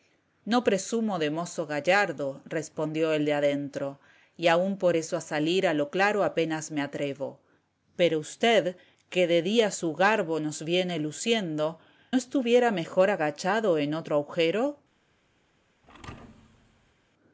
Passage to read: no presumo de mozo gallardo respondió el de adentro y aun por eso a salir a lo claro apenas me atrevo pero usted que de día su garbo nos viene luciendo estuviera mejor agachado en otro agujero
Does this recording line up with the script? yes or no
yes